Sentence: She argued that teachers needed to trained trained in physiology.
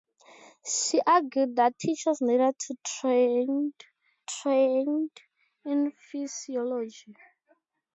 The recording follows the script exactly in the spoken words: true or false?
true